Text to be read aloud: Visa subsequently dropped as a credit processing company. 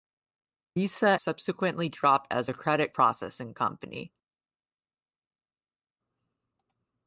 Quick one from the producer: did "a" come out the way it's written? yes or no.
yes